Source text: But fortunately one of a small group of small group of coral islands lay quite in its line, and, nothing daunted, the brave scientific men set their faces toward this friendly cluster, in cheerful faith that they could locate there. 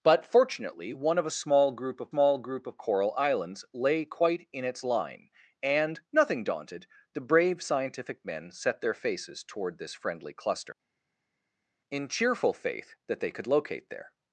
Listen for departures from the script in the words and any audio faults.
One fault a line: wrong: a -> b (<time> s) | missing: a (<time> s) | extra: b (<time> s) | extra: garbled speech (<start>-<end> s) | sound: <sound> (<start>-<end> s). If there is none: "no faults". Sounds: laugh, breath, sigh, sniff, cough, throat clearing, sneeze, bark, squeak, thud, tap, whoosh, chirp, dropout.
no faults